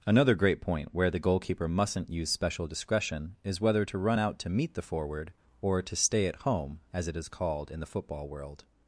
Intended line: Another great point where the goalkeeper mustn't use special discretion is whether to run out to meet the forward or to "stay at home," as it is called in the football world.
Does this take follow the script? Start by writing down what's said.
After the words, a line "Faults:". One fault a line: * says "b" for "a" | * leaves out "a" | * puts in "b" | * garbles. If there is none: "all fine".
Another great point where the goalkeeper mustn't use special discretion is whether to run out to meet the forward or to "stay at home," as it is called in the football world.
Faults:
all fine